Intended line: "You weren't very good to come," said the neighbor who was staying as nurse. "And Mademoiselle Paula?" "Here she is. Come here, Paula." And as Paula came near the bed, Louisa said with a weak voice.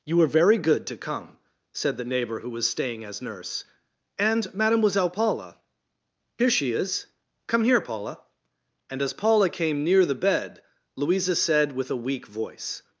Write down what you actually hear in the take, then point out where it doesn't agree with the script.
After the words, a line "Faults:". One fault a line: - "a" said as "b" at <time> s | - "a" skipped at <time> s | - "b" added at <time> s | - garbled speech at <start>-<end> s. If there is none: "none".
"You were very good to come," said the neighbor who was staying as nurse. "And Mademoiselle Paula?" "Here she is. Come here, Paula." And as Paula came near the bed, Louisa said with a weak voice.
Faults:
- "weren't" said as "were" at 0.2 s